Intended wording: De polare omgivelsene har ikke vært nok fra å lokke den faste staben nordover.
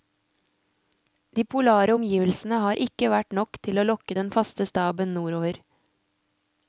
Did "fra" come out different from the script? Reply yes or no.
yes